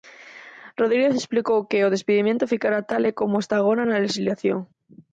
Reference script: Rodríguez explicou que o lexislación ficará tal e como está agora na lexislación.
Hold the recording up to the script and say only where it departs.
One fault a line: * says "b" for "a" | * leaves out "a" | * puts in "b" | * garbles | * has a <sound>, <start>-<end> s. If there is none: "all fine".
* says "despedimento" for "lexislación"